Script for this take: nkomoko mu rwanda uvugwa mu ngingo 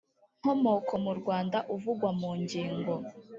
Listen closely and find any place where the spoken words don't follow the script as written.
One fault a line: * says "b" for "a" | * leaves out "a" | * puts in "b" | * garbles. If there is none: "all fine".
all fine